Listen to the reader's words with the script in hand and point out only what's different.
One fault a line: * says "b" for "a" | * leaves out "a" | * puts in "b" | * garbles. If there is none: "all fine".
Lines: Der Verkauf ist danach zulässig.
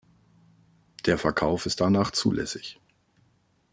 all fine